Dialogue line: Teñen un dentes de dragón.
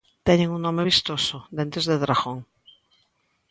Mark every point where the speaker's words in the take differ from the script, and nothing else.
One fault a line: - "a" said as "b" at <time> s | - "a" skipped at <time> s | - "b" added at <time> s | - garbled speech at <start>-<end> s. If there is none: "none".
- "nome vistoso" added at 0.7 s